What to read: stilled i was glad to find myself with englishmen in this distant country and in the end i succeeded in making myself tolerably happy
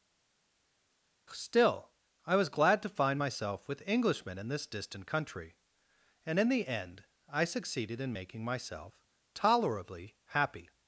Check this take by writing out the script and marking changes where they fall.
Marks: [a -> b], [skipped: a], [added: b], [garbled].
[stilled -> still] i was glad to find myself with englishmen in this distant country and in the end i succeeded in making myself tolerably happy